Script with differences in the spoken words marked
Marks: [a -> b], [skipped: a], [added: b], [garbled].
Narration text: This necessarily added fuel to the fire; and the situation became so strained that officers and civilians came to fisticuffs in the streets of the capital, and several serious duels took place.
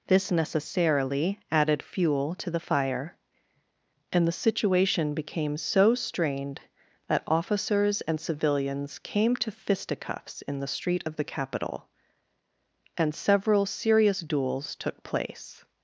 This necessarily added fuel to the fire; and the situation became so strained that officers and civilians came to fisticuffs in the [streets -> street] of the capital, and several serious duels took place.